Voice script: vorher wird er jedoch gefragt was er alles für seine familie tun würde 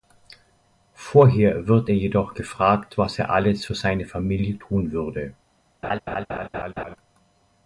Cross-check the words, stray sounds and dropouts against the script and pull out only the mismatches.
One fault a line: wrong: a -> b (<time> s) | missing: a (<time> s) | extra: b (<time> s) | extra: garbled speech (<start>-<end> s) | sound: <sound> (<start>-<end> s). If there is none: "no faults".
sound: laugh (5.8-7.0 s)